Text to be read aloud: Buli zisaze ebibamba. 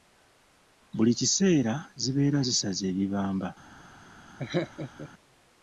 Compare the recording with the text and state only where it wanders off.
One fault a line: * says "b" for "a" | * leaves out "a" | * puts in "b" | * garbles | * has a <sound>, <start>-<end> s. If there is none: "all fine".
* puts in "kiseera zibeera"
* has a laugh, 4.4-5.1 s